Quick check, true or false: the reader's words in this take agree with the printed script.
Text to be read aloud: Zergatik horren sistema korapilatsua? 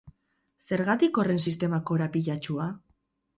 true